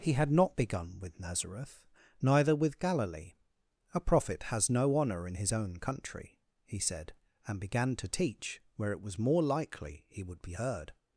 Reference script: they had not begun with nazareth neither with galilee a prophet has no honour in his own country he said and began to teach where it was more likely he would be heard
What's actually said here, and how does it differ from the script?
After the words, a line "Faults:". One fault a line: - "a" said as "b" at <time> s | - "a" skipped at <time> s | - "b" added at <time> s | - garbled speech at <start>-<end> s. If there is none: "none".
he had not begun with nazareth neither with galilee a prophet has no honour in his own country he said and began to teach where it was more likely he would be heard
Faults:
- "they" said as "he" at 0.0 s